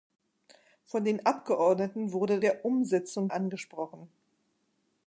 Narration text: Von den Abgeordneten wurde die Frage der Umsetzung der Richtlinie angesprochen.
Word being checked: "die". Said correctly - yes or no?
no